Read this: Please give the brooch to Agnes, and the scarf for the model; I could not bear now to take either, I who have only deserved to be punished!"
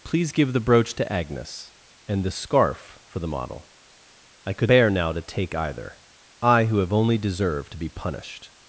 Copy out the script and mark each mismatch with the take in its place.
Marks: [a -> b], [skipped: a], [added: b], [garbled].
Please give the brooch to Agnes, and the scarf for the model; I could [skipped: not] bear now to take either, I who have only deserved to be punished!"